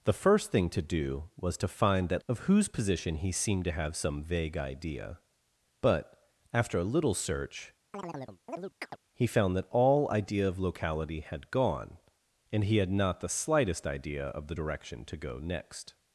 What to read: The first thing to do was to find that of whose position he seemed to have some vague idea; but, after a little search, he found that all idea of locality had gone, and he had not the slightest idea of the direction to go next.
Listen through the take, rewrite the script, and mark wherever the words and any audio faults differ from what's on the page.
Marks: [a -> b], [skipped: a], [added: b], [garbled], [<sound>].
The first thing to do was to find that of whose position he seemed to have some vague idea; but, after a little search, [chirp] he found that all idea of locality had gone, and he had not the slightest idea of the direction to go next.